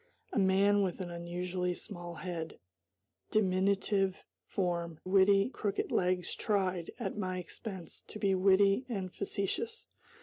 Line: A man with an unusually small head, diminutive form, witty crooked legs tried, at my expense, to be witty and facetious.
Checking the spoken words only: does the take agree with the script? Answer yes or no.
yes